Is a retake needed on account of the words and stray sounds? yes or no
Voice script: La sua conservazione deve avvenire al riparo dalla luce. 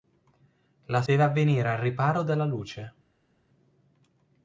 yes